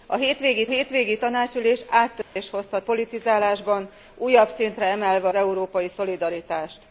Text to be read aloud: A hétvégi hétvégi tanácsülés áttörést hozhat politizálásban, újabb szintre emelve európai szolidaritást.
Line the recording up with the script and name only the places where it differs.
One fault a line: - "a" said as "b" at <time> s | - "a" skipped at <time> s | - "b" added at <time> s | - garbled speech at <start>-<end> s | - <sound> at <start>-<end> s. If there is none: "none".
- dropout at 2.2-2.4 s